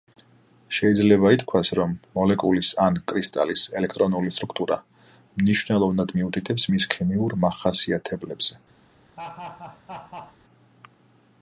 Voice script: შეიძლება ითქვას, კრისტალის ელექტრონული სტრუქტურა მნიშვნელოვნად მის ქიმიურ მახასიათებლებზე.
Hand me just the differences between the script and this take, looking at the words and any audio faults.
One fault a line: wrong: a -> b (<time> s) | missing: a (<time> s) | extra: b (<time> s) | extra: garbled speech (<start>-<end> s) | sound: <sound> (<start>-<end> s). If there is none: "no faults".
extra: რომ მოლეკულის ან (1.8 s)
extra: მიუთითებს (6.2 s)
sound: laugh (9.2-10.4 s)